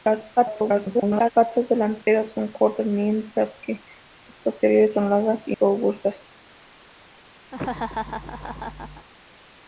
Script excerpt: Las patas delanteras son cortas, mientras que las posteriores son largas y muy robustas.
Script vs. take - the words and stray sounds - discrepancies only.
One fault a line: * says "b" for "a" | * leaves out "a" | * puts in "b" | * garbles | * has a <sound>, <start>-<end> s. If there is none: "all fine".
* garbles
* has a dropout, 2.0-2.1 s
* leaves out "muy"
* has a laugh, 7.5-9.1 s